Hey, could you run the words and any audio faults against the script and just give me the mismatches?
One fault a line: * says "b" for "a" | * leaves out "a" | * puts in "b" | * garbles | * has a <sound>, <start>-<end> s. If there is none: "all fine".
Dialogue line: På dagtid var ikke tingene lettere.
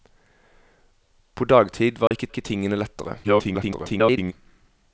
* has a dropout, 2.1-2.1 s
* puts in "ikke"
* garbles